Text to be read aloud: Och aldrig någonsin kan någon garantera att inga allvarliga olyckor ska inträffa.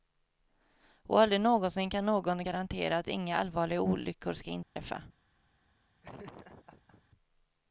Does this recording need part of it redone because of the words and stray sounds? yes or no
yes